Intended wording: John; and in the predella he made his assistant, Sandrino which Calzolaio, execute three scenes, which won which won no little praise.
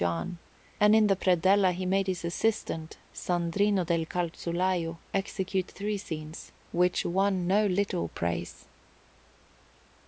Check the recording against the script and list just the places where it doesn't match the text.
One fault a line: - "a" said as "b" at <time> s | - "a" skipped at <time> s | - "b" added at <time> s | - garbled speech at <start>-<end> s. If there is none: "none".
- "which" said as "del" at 3.9 s
- "which won" skipped at 7.5 s